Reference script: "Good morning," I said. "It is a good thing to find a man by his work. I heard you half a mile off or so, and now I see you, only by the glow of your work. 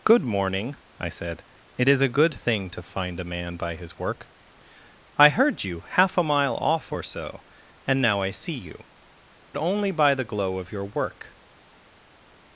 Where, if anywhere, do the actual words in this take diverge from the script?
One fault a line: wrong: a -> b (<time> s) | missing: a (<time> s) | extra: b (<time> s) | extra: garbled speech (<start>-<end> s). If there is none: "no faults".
no faults